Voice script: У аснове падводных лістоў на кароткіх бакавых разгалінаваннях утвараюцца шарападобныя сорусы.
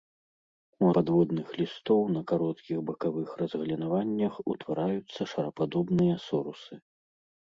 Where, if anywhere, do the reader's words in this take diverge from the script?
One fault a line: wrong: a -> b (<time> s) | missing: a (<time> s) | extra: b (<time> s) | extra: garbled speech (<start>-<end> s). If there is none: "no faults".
missing: аснове (0.9 s)